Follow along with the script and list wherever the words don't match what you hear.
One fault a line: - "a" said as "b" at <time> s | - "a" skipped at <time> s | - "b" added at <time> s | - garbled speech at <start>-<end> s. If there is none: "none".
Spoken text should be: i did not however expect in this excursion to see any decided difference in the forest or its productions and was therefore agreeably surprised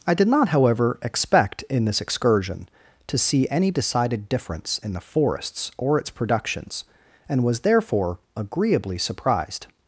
- "forest" said as "forests" at 5.0 s